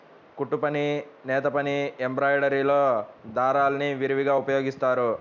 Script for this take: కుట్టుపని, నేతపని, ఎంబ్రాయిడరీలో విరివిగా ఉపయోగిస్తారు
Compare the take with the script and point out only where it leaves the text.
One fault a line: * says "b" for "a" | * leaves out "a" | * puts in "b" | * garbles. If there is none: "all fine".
* puts in "దారాల్ని"